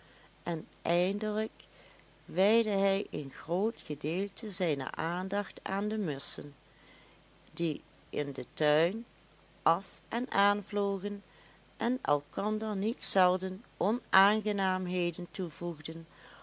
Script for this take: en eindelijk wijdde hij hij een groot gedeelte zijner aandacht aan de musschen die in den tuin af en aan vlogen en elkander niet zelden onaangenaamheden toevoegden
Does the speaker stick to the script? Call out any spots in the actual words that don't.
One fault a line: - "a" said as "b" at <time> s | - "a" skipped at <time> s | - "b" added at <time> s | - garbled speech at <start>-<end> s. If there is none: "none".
- "hij" skipped at 3.1 s